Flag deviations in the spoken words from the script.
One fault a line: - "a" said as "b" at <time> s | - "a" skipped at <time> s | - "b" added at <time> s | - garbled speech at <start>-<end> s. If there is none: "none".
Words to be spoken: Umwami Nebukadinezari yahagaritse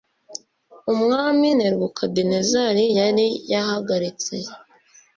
- "yari" added at 3.0 s